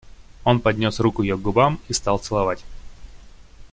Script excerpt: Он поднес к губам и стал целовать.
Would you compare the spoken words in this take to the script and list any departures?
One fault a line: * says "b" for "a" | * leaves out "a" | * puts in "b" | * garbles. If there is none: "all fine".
* puts in "руку ее"